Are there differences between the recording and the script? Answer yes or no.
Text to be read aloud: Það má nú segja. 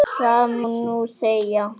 yes